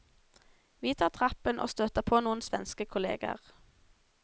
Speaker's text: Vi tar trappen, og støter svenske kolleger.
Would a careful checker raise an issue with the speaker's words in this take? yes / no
yes